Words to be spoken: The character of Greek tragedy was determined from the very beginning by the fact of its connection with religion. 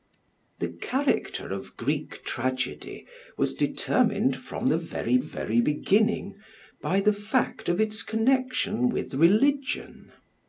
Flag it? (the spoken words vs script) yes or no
yes